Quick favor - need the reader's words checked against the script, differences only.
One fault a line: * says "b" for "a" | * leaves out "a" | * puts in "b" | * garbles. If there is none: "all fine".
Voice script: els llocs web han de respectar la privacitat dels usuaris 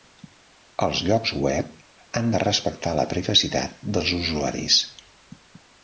all fine